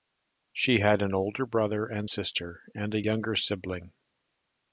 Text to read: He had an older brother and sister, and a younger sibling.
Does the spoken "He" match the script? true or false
false